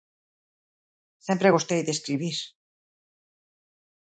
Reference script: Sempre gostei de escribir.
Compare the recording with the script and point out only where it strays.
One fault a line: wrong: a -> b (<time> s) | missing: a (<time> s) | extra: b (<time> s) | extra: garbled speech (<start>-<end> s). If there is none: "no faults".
no faults